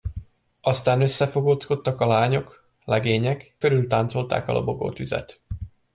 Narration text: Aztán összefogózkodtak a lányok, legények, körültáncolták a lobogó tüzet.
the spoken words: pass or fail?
pass